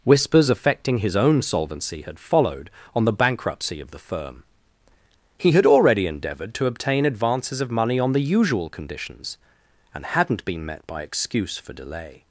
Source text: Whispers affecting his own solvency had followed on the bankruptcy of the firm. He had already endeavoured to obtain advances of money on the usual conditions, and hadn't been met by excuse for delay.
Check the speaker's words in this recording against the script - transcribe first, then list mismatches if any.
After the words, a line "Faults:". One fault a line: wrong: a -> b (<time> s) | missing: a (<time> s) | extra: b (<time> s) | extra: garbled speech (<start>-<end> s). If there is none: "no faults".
Whispers affecting his own solvency had followed on the bankruptcy of the firm. He had already endeavoured to obtain advances of money on the usual conditions, and hadn't been met by excuse for delay.
Faults:
no faults